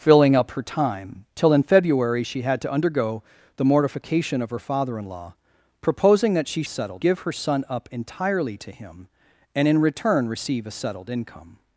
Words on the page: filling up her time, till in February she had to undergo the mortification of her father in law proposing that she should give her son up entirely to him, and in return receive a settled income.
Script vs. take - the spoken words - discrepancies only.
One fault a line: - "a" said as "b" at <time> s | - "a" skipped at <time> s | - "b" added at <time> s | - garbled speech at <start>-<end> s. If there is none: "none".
- "should" said as "settled" at 6.7 s